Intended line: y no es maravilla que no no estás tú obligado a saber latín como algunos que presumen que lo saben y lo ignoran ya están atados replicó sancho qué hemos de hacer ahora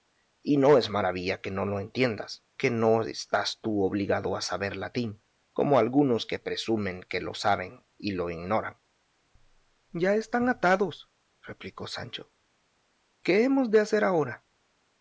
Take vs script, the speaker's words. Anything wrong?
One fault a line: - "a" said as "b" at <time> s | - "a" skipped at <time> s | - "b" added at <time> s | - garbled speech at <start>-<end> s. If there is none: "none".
- "lo entiendas que" added at 1.6 s